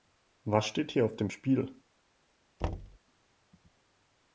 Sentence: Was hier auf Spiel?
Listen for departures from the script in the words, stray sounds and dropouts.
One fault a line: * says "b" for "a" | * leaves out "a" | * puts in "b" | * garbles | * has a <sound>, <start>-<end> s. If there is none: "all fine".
* puts in "steht"
* puts in "dem"
* has a thud, 2.6-3.0 s